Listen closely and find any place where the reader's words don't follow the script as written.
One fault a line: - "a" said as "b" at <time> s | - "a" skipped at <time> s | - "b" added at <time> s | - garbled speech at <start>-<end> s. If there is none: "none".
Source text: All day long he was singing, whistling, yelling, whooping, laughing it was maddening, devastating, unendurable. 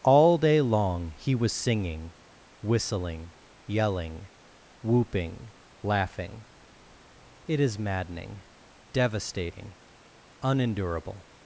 - "was" said as "is" at 7.6 s